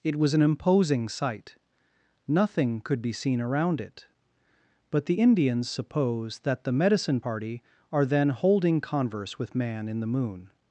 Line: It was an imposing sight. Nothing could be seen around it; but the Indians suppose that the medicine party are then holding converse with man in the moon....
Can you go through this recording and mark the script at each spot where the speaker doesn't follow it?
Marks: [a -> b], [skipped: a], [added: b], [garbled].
It was an imposing sight. Nothing could be seen around it; but the Indians suppose that the medicine party are then holding converse with man in the moon....